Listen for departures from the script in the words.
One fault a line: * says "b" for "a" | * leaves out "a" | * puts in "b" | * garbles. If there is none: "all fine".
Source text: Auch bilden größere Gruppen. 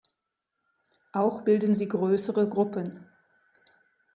* puts in "sie"